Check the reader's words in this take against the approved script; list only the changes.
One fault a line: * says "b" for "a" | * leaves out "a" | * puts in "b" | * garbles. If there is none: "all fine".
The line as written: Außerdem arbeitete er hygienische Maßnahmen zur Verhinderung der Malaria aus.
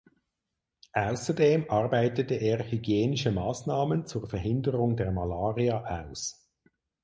all fine